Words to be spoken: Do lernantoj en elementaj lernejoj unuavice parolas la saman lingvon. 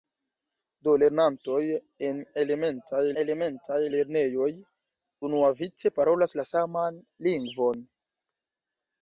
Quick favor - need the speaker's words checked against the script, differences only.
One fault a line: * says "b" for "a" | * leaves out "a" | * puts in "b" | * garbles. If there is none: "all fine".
* puts in "elementaj"